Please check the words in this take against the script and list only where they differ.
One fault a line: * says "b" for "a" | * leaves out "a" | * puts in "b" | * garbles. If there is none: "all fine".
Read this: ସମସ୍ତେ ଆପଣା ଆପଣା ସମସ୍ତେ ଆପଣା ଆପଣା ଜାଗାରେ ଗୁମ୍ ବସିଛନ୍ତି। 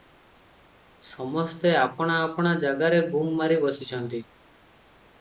* leaves out "ସମସ୍ତେ ଆପଣା ଆପଣା"
* puts in "ମାରି"